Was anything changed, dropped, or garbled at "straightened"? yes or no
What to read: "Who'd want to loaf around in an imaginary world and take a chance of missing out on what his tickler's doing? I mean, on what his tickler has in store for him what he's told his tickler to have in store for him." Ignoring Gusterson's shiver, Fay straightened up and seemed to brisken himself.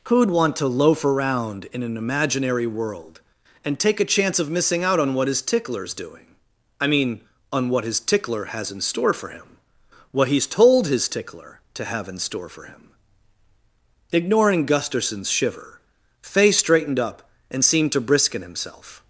no